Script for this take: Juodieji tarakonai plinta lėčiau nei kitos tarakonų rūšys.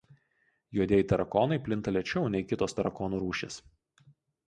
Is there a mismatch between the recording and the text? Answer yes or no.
no